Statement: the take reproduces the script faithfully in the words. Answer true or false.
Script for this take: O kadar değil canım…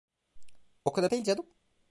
true